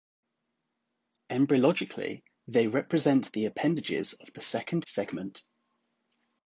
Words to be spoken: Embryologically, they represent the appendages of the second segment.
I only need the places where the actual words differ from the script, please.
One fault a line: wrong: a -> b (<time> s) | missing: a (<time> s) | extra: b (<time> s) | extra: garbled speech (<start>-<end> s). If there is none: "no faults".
no faults